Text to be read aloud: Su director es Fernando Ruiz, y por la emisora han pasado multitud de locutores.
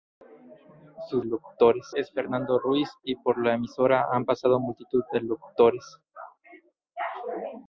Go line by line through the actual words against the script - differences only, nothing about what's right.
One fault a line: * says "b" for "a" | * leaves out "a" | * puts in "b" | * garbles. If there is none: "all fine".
* says "locutores" for "director"